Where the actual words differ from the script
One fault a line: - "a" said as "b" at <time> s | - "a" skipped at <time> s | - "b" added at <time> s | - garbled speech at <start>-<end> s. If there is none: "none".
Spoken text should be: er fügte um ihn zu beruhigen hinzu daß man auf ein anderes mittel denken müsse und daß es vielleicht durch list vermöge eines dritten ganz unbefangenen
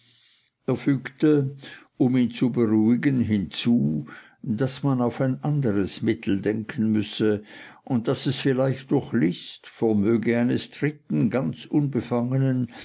none